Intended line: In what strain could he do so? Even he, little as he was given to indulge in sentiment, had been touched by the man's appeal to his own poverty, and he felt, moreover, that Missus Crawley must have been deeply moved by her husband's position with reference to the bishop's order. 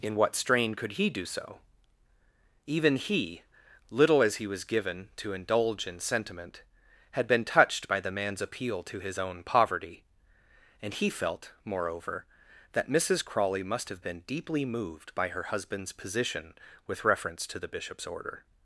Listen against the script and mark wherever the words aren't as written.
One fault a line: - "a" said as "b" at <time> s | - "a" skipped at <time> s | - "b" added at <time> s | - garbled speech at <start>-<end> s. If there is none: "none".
none